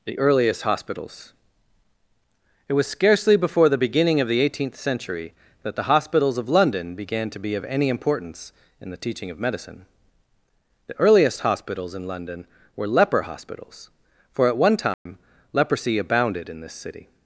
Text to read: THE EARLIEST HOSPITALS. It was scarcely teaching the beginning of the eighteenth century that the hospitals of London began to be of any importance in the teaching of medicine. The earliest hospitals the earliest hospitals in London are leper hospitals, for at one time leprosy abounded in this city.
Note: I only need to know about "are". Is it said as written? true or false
false